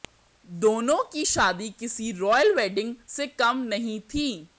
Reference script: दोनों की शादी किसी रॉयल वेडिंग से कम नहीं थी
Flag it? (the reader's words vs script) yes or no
no